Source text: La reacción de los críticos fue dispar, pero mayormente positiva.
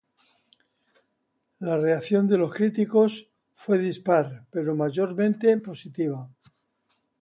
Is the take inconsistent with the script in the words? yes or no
no